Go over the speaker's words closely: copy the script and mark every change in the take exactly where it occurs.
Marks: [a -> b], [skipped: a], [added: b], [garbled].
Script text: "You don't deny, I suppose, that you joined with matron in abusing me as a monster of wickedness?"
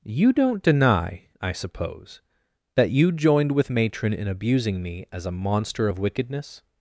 "You don't deny, I suppose, that you joined with matron in abusing me as a monster of wickedness?"